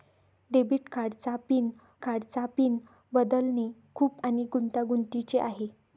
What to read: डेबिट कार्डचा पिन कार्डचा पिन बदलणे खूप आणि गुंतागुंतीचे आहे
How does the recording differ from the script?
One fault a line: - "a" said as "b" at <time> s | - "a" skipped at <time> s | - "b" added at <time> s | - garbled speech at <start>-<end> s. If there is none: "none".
none